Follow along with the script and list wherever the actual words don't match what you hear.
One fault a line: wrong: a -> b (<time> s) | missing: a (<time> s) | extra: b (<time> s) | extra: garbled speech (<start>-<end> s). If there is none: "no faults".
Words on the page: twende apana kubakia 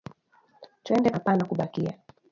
no faults